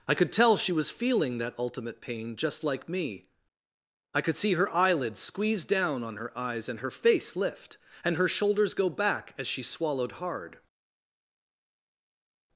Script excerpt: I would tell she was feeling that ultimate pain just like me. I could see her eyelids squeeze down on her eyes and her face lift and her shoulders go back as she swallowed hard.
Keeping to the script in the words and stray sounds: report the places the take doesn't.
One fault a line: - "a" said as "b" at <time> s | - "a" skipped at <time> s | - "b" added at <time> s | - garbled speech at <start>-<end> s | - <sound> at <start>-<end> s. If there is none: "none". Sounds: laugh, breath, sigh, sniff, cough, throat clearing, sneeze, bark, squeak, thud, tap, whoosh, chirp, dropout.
- "would" said as "could" at 0.1 s